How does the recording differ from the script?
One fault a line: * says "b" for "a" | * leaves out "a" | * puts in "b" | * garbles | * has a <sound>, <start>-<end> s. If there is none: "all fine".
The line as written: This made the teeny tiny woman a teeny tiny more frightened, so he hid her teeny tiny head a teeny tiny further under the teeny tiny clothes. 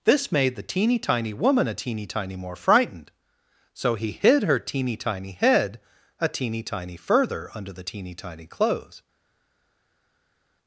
all fine